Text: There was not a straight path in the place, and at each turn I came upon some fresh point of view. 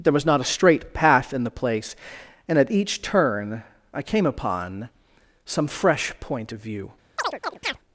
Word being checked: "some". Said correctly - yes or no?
yes